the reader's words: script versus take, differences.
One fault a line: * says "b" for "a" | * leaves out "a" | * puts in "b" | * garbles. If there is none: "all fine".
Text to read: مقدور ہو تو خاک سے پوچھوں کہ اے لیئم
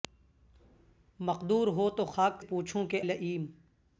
* leaves out "سے"
* leaves out "اے"